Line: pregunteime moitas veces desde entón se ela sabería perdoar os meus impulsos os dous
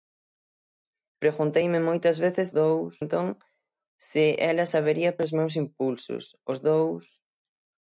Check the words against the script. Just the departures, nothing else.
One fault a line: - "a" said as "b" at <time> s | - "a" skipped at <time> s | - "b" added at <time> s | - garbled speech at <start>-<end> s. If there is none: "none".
- "desde" said as "dous" at 2.6 s
- "perdoar" skipped at 5.2 s